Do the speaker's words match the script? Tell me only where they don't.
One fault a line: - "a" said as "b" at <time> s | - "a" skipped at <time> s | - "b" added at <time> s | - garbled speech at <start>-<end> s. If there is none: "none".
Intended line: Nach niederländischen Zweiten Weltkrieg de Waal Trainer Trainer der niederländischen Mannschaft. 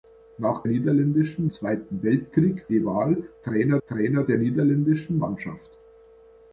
none